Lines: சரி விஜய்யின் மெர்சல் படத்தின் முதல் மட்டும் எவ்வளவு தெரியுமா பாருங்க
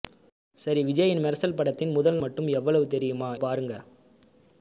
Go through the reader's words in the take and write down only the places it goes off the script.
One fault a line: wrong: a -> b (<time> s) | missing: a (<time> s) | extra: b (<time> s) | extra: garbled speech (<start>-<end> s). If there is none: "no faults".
no faults